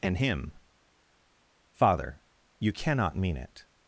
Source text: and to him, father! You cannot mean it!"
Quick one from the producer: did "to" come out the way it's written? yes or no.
no